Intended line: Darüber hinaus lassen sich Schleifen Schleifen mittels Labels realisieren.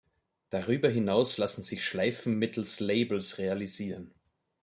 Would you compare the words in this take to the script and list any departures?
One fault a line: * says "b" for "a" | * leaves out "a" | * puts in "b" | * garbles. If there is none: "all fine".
* leaves out "Schleifen"